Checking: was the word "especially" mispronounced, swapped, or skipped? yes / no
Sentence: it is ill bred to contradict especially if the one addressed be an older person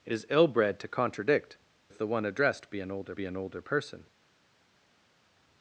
yes